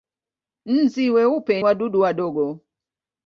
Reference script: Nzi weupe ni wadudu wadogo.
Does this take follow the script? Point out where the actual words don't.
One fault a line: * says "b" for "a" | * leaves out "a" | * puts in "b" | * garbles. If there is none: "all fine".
* leaves out "ni"